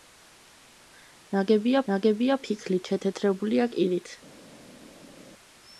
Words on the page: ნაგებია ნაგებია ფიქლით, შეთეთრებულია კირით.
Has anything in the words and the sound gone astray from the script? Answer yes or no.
no